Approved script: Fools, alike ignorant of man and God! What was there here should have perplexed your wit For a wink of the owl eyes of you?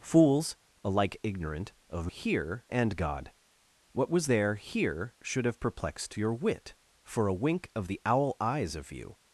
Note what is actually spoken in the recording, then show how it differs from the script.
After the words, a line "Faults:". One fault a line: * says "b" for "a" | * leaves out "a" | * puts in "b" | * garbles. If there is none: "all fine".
Fools, alike ignorant of here and God! What was there here should have perplexed your wit For a wink of the owl eyes of you?
Faults:
* says "here" for "man"